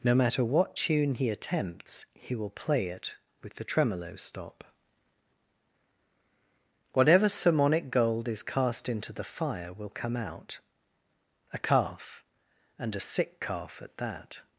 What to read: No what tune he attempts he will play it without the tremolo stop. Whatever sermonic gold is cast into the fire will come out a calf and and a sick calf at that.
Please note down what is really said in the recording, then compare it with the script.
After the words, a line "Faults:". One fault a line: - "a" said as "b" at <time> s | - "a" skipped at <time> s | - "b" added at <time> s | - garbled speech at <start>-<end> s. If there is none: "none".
No matter what tune he attempts he will play it with the tremolo stop. Whatever sermonic gold is cast into the fire will come out a calf and a sick calf at that.
Faults:
- "matter" added at 0.1 s
- "without" said as "with" at 3.4 s
- "and" skipped at 12.9 s